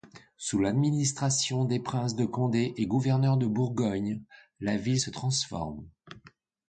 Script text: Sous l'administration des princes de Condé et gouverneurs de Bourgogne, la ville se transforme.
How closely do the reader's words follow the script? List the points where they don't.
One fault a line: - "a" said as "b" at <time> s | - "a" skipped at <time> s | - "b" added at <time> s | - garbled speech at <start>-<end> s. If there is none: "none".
none